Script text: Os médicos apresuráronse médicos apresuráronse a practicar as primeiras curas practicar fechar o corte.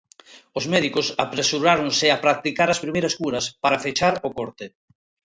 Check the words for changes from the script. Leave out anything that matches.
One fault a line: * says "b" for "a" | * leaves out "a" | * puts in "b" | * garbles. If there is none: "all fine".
* leaves out "médicos apresuráronse"
* says "para" for "practicar"